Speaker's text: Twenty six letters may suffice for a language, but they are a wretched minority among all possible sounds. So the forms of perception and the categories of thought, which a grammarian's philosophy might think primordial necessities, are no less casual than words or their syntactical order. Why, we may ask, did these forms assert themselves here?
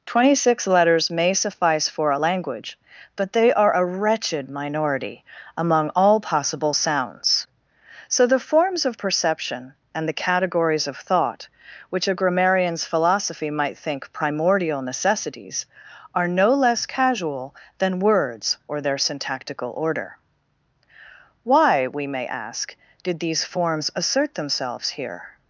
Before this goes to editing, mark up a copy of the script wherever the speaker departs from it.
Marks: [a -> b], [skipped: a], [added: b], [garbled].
Twenty six letters may suffice for a language, but they are a wretched minority among all possible sounds. So the forms of perception and the categories of thought, which a grammarian's philosophy might think primordial necessities, are no less casual than words or their syntactical order. Why, we may ask, did these forms assert themselves here?